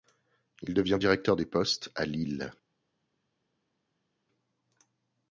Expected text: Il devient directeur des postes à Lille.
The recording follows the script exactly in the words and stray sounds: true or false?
true